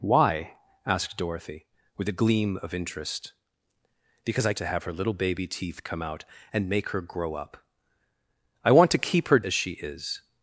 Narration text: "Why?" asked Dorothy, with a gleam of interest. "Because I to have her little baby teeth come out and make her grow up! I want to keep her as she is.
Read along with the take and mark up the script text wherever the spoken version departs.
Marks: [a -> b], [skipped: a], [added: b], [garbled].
"Why?" asked Dorothy, with a gleam of interest. "Because I to have her little baby teeth come out and make her grow up! I want to keep her as she is.